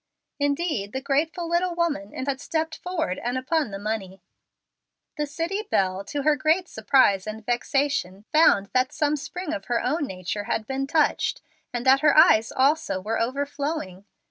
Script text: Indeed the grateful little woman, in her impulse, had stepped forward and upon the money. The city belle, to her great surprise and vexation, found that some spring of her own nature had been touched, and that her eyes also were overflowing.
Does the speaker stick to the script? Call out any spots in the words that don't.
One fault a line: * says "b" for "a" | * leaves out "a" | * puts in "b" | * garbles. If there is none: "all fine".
* leaves out "her impulse"